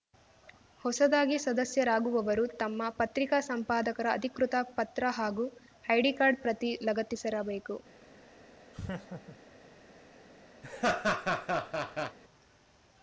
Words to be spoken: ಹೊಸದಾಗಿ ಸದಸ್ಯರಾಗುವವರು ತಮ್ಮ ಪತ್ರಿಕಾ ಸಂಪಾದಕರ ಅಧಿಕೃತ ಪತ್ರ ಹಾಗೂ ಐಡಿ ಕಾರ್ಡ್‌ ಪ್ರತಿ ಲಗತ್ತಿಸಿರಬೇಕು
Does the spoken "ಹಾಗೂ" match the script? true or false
true